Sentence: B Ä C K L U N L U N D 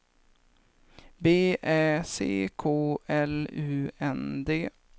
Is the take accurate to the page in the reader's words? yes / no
no